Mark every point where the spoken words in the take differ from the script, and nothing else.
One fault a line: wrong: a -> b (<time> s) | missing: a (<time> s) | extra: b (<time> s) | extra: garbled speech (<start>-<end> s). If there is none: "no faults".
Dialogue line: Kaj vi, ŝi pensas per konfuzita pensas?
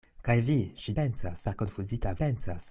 no faults